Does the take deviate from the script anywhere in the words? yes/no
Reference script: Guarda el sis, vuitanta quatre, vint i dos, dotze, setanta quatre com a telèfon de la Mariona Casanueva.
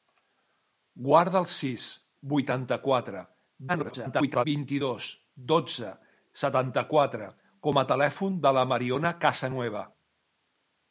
yes